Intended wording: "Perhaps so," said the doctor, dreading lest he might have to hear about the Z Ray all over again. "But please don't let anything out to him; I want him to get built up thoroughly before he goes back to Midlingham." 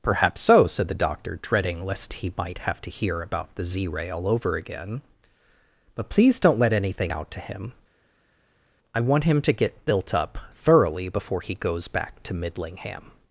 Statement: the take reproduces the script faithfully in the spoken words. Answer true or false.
true